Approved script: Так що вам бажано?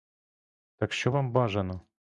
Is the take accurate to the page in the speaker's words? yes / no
yes